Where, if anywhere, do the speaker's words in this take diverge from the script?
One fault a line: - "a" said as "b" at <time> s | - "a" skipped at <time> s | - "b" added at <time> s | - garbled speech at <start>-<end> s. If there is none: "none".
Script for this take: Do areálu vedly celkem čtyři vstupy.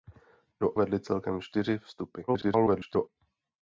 - "areálu" skipped at 0.8 s
- garbled speech at 2.3-3.1 s